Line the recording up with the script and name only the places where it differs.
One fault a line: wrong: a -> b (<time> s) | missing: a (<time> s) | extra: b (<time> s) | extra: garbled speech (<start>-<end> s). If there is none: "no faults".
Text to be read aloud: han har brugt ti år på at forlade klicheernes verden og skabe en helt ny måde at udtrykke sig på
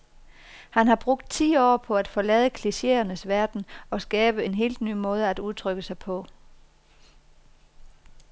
no faults